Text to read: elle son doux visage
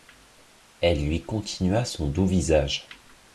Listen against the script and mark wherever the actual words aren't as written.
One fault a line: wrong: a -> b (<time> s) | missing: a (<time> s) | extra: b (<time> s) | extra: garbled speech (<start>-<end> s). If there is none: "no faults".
extra: lui continua (1.1 s)